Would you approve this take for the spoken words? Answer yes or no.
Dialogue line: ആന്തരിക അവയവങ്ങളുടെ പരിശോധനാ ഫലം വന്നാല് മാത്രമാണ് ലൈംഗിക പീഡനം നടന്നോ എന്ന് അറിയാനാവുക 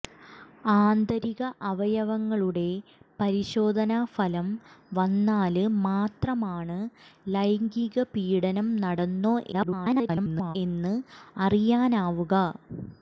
no